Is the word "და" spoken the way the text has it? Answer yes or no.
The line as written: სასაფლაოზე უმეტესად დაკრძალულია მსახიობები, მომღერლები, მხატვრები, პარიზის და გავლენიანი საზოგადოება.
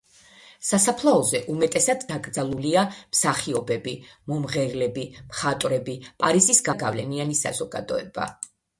yes